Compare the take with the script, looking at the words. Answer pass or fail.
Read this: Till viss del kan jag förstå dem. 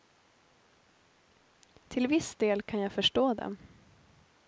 pass